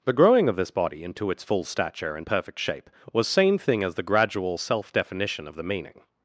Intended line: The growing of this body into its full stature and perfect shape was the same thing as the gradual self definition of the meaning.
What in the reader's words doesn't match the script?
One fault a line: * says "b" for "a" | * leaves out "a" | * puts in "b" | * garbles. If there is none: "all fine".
* leaves out "the"